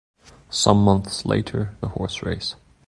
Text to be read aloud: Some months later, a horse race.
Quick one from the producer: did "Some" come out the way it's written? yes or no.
yes